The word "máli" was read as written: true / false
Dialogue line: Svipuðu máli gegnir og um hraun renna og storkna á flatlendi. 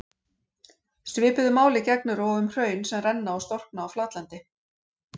true